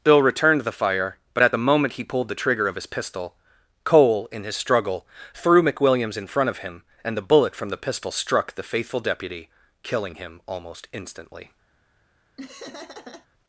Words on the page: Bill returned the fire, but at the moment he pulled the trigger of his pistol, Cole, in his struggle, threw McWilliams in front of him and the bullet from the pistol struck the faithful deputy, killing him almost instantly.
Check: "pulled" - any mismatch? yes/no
no